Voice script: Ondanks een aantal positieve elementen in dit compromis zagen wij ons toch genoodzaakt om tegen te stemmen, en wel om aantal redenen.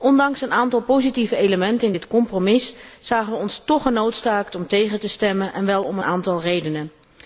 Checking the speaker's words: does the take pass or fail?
pass